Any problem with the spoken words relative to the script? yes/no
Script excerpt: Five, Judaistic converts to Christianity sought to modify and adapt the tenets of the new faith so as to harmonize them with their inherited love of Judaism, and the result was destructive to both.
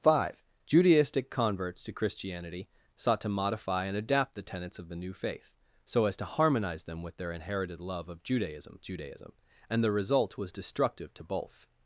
yes